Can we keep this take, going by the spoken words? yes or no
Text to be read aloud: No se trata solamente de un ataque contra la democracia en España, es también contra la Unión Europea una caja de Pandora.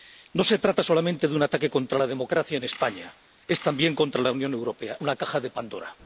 yes